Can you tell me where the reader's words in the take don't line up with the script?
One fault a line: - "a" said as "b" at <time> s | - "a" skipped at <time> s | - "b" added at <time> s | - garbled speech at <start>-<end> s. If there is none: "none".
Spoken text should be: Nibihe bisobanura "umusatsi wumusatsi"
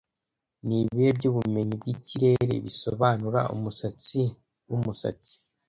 - "byubumenyi bwikirere" added at 1.2 s